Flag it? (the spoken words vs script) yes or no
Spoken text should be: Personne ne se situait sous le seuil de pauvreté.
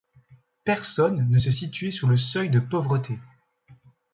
no